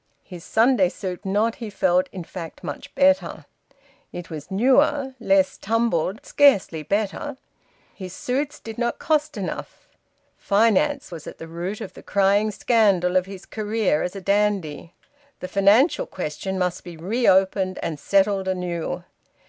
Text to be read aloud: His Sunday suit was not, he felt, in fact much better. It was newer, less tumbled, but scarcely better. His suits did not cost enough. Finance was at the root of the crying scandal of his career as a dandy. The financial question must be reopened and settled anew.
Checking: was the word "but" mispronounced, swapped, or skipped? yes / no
yes